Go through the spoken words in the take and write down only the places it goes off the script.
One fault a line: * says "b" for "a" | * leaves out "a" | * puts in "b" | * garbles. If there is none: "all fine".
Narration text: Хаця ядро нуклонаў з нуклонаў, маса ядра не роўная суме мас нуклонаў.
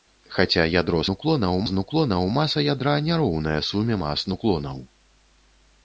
all fine